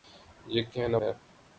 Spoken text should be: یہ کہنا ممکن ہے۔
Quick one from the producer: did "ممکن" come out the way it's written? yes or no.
no